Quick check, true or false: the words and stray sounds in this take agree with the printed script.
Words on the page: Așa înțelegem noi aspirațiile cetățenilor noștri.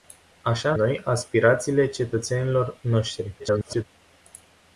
false